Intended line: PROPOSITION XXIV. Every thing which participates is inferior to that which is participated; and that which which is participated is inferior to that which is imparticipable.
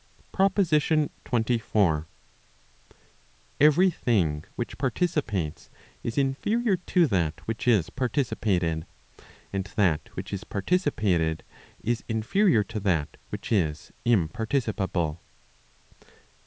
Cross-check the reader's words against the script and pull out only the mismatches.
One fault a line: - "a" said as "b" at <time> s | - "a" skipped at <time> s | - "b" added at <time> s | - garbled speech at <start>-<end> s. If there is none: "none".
- "which" skipped at 10.3 s